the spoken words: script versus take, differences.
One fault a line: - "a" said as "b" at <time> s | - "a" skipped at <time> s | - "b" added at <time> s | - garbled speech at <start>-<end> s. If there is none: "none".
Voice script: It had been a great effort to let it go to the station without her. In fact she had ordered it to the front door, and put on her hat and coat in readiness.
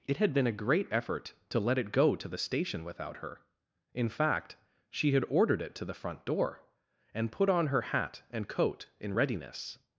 none